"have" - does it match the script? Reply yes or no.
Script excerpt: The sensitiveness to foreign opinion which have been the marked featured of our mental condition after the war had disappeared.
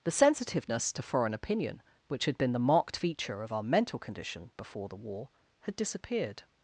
no